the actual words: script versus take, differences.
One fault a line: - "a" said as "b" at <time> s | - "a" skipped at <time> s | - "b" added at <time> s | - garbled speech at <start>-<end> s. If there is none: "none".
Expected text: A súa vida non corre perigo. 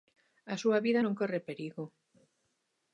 none